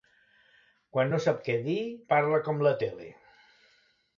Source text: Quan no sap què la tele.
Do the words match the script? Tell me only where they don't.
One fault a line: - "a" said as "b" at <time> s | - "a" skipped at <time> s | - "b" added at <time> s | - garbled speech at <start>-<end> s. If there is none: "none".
- "dir parla com" added at 1.6 s